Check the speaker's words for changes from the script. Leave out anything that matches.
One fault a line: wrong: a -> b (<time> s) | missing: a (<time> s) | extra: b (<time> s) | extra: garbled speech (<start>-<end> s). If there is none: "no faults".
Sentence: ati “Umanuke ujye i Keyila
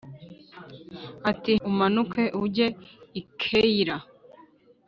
no faults